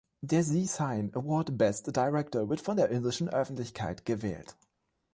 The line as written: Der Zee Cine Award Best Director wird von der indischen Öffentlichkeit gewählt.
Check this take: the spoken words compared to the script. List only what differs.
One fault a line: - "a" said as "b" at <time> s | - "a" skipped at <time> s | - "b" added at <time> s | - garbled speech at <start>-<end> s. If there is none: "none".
none